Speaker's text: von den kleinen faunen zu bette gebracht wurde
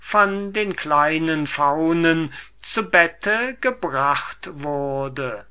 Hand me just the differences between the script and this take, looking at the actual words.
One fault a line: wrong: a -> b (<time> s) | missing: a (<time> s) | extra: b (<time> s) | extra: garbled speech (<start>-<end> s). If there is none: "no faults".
no faults